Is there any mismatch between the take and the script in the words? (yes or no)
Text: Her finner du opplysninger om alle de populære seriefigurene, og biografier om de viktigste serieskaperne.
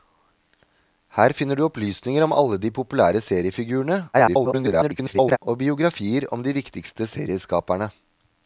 yes